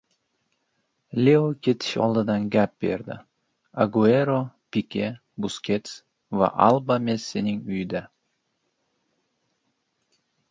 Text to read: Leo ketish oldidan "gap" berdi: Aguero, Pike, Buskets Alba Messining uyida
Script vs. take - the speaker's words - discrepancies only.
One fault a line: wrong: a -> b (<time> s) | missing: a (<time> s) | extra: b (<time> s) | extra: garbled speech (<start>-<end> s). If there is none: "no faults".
extra: va (6.3 s)